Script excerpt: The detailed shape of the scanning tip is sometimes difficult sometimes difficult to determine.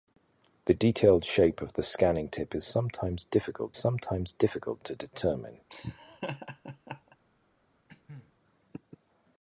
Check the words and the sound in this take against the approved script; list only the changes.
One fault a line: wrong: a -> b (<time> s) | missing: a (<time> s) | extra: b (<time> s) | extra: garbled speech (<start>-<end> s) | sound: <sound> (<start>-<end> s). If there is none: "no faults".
sound: laugh (5.7-7.2 s)
sound: cough (7.9-8.3 s)